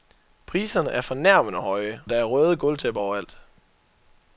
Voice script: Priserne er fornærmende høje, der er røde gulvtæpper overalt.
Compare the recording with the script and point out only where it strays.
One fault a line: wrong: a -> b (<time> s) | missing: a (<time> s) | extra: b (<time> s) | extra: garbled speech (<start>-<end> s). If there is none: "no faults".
no faults